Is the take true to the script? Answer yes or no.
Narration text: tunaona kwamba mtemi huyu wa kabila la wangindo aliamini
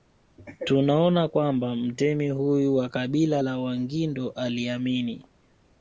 yes